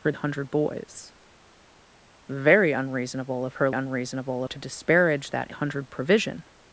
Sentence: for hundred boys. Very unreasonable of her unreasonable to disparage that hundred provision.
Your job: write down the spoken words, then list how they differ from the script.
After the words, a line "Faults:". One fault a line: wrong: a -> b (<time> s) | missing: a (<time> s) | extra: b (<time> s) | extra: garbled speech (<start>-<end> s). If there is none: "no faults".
for hundred boys. Very unreasonable of her unreasonable to disparage that hundred provision.
Faults:
no faults